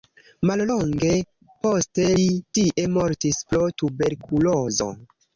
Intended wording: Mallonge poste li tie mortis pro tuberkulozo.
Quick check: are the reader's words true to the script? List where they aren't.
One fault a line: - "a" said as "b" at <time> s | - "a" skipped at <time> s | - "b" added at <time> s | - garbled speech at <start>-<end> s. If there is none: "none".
none